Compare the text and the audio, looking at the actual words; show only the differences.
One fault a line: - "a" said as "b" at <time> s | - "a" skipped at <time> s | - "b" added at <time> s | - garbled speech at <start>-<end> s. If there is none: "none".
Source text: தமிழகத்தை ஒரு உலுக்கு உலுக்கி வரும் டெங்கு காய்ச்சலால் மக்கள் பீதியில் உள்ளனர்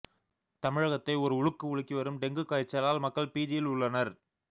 none